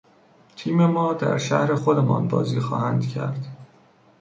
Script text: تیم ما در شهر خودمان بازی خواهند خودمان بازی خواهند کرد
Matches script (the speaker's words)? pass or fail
fail